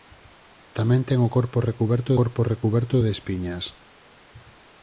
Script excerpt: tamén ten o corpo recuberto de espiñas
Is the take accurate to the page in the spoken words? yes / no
no